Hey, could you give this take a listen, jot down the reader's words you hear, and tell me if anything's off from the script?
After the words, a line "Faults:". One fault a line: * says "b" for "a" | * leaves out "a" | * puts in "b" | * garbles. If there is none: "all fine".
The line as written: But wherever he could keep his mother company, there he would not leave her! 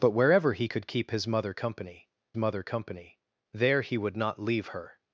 But wherever he could keep his mother company mother company, there he would not leave her!
Faults:
* puts in "mother company"